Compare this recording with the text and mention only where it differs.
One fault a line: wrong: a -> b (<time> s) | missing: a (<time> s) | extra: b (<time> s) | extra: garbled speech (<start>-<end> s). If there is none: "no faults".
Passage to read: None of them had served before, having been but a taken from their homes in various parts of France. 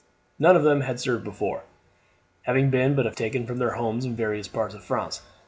no faults